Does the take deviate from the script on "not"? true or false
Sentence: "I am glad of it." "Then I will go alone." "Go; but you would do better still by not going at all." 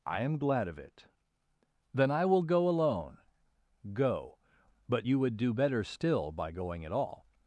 true